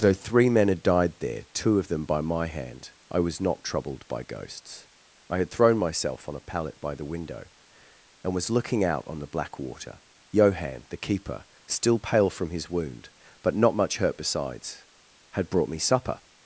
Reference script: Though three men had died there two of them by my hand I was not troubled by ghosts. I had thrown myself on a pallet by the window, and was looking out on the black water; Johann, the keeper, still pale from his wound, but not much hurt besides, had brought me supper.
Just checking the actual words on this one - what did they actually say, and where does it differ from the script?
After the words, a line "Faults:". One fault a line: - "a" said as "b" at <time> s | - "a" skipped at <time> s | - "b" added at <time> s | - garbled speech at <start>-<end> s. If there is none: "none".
Though three men had died there two of them by my hand I was not troubled by ghosts. I had thrown myself on a pallet by the window, and was looking out on the black water; Johann, the keeper, still pale from his wound, but not much hurt besides, had brought me supper.
Faults:
none